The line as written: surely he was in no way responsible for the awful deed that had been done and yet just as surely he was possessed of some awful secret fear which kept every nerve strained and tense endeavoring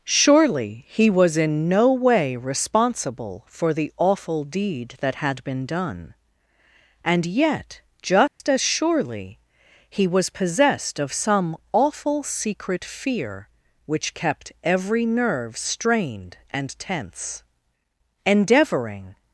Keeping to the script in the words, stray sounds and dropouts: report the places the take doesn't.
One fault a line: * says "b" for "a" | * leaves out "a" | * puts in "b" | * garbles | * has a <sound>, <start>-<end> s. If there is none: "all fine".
* has a dropout, 8.3-8.4 s